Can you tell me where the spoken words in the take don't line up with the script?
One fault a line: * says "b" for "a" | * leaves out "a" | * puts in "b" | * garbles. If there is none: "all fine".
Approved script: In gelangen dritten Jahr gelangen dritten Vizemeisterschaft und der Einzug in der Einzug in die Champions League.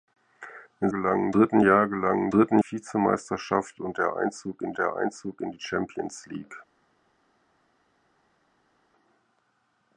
all fine